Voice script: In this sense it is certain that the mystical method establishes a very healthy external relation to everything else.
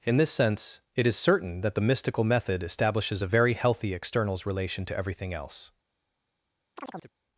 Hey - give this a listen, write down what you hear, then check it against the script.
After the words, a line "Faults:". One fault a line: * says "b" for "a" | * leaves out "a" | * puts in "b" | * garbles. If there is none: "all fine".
In this sense it is certain that the mystical method establishes a very healthy externals relation to everything else.
Faults:
* says "externals" for "external"